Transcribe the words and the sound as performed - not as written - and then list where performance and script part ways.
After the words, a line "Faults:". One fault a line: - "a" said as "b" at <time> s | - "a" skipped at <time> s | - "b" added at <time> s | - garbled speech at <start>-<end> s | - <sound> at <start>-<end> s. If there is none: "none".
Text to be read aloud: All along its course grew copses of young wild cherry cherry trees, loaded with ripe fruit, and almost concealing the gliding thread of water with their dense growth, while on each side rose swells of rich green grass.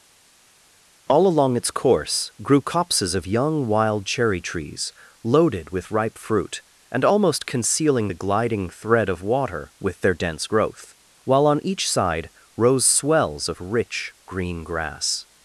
All along its course grew copses of young wild cherry trees, loaded with ripe fruit, and almost concealing the gliding thread of water with their dense growth, while on each side rose swells of rich green grass.
Faults:
- "cherry" skipped at 4.4 s